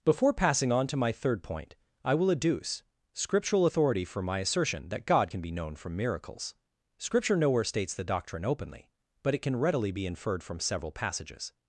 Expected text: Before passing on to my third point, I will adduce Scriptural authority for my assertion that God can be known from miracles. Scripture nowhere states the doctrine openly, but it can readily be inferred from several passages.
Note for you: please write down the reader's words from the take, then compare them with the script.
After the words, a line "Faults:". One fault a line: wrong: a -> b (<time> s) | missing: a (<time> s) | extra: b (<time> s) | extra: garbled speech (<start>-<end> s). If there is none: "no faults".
Before passing on to my third point, I will adduce Scriptural authority for my assertion that God can be known from miracles. Scripture nowhere states the doctrine openly, but it can readily be inferred from several passages.
Faults:
no faults